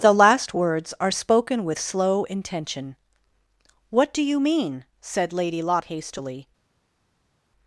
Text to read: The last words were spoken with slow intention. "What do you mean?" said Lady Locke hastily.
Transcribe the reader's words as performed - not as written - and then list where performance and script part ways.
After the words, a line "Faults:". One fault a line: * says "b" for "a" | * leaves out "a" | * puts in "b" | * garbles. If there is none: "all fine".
The last words are spoken with slow intention. "What do you mean?" said Lady Locke hastily.
Faults:
* says "are" for "were"